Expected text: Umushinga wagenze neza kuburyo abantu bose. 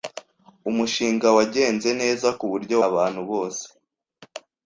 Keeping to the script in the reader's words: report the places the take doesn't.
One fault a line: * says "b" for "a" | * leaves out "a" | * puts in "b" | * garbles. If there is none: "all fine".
all fine